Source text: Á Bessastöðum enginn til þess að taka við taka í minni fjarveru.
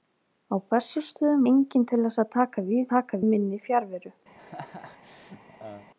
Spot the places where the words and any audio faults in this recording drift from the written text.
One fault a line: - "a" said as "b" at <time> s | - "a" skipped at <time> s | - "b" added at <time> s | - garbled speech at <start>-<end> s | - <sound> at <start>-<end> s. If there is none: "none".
- laugh at 4.3-5.9 s